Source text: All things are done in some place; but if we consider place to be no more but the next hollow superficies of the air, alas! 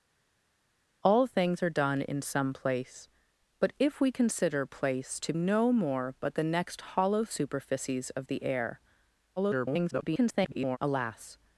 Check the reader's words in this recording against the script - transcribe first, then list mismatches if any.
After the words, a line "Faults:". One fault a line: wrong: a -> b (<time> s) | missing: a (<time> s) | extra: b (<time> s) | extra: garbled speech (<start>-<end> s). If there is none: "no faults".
All things are done in some place; but if we consider place to no more but the next hollow superficies of the air, [garbled] alas!
Faults:
missing: be (5.3 s)
extra: garbled speech (9.4-10.8 s)